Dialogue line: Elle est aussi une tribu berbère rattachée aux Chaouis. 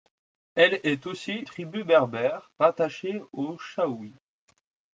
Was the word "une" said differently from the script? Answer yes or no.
yes